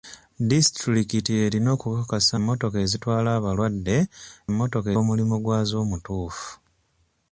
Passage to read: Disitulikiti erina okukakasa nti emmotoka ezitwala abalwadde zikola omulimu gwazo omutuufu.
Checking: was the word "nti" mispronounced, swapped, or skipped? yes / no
yes